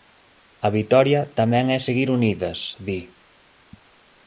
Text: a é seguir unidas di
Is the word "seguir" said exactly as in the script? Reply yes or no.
yes